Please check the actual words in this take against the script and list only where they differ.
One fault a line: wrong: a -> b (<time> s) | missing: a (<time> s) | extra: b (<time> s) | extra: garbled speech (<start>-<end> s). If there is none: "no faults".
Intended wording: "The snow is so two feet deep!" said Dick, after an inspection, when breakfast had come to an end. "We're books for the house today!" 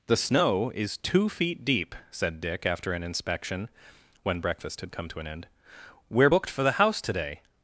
missing: so (1.0 s)
wrong: books -> booked (6.2 s)